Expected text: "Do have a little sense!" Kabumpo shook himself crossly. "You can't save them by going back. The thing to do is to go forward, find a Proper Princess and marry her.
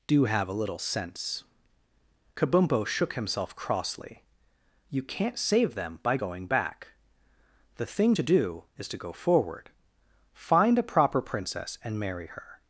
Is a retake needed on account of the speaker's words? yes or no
no